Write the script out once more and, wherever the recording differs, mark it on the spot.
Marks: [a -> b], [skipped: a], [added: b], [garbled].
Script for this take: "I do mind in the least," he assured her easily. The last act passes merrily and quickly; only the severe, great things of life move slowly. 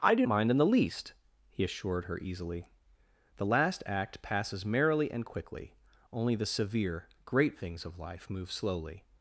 "I do mind in the least," he assured her easily. The last act passes merrily and quickly; only the severe, great things of life move slowly.